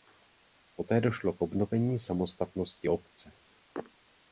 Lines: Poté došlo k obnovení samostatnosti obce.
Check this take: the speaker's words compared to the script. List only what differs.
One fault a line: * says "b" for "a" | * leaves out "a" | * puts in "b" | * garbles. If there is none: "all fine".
all fine